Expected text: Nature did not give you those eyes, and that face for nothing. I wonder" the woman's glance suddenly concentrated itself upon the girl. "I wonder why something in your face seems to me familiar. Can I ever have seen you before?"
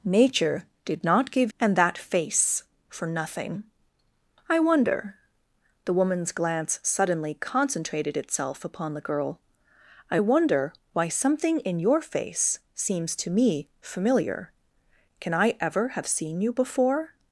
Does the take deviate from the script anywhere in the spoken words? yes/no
yes